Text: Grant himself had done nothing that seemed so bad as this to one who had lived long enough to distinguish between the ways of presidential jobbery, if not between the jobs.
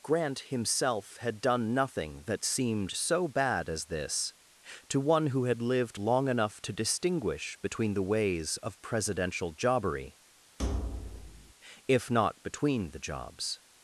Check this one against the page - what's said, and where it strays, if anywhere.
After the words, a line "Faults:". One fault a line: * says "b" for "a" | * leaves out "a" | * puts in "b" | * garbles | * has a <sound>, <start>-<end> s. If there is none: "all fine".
Grant himself had done nothing that seemed so bad as this to one who had lived long enough to distinguish between the ways of presidential jobbery, if not between the jobs.
Faults:
* has a thud, 10.6-11.5 s